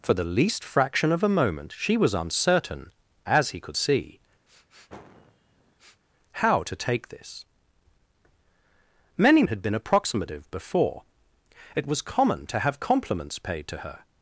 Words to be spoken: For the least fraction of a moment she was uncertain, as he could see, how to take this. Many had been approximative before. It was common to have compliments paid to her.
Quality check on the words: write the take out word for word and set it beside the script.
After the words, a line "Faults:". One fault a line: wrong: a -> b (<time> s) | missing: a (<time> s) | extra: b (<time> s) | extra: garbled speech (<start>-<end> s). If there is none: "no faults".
For the least fraction of a moment she was uncertain, as he could see, how to take this. Many had been approximative before. It was common to have compliments paid to her.
Faults:
no faults